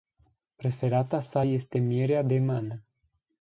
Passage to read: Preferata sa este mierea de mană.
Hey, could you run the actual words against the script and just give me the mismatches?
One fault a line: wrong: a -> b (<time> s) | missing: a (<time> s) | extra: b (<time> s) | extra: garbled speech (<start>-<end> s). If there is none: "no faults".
no faults